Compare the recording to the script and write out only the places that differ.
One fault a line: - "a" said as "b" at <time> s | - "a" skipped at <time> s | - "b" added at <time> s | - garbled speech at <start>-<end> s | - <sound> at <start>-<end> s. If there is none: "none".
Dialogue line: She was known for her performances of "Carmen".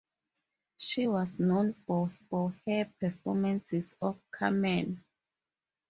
- "for" added at 2.2 s